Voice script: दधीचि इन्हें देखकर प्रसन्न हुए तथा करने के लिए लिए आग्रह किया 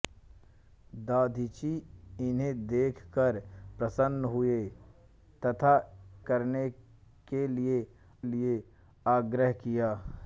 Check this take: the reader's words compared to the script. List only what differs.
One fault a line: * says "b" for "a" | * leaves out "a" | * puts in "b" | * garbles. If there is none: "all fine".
all fine